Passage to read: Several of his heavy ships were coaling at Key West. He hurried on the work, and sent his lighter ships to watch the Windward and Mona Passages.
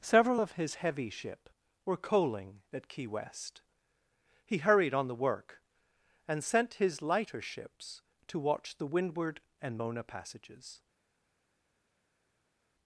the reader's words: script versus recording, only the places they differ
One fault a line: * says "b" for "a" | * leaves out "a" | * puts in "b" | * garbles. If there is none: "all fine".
* says "ship" for "ships"